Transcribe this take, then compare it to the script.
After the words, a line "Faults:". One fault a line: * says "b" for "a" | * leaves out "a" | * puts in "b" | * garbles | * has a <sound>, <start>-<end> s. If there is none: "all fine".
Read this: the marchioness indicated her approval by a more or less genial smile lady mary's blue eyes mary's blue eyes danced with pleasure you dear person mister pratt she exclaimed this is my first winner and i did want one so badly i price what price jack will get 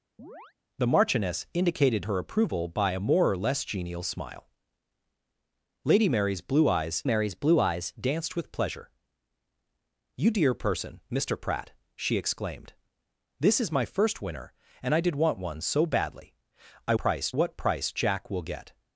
the marchioness indicated her approval by a more or less genial smile lady mary's blue eyes mary's blue eyes danced with pleasure you dear person mister pratt she exclaimed this is my first winner and i did want one so badly i price what price jack will get
Faults:
* has a chirp, 0.2-0.5 s